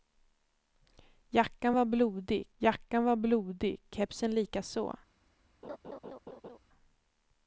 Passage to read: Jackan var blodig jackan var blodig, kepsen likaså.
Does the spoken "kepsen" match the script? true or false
true